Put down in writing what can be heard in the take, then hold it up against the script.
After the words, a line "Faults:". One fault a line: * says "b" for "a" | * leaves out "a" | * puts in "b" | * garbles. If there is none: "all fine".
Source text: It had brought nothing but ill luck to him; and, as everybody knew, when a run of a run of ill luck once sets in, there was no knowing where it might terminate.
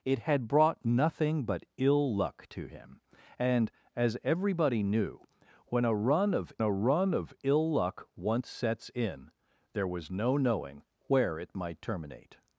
It had brought nothing but ill luck to him; and, as everybody knew, when a run of a run of ill luck once sets in, there was no knowing where it might terminate.
Faults:
all fine